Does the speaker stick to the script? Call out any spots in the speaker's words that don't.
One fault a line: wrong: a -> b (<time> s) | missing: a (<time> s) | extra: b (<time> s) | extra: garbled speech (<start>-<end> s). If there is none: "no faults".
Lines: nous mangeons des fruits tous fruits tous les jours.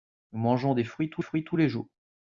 no faults